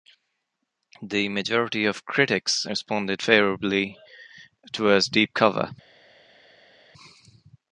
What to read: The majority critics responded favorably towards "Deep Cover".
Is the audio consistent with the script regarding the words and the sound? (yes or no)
no